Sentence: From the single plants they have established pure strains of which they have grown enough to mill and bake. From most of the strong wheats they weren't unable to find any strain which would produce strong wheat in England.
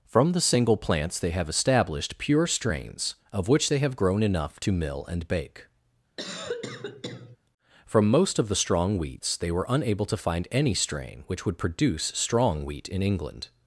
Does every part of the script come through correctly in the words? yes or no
no